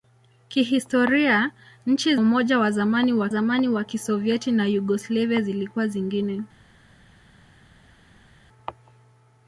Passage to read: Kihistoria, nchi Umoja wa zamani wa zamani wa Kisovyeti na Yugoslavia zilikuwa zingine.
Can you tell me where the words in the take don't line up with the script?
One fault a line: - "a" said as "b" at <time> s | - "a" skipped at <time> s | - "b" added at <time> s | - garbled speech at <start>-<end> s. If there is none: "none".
none